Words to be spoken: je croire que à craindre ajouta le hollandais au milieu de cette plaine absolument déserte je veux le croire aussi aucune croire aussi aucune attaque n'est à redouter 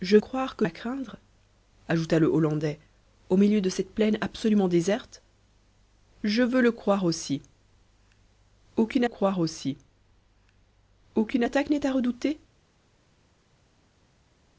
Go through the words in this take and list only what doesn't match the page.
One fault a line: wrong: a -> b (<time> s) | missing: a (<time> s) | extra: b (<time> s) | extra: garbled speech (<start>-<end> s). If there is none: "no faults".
no faults